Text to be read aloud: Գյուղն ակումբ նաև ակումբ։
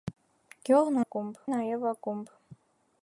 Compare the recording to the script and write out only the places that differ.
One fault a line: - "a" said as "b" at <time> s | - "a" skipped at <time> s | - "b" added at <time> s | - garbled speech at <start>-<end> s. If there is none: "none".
none